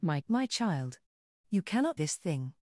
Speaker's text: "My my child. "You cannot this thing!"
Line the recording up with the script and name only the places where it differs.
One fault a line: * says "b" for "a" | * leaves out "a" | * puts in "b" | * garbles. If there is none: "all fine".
all fine